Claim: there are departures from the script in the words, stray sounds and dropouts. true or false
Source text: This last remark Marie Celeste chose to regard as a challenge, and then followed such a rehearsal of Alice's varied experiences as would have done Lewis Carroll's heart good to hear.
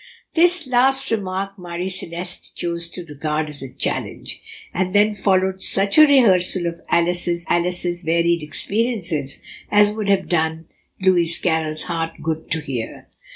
true